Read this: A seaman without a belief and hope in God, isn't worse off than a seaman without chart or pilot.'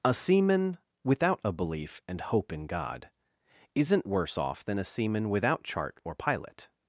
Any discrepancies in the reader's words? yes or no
no